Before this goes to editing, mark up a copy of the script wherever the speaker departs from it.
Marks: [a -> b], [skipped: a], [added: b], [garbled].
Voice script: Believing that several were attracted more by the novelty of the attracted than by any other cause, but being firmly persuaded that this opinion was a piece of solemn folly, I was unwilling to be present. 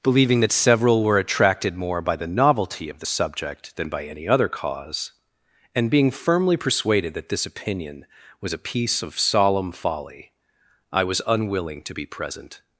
Believing that several were attracted more by the novelty of the [attracted -> subject] than by any other cause, [but -> and] being firmly persuaded that this opinion was a piece of solemn folly, I was unwilling to be present.